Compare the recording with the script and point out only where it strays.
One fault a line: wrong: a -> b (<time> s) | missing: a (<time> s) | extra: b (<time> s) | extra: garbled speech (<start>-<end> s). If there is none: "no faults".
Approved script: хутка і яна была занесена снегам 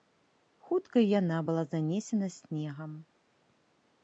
no faults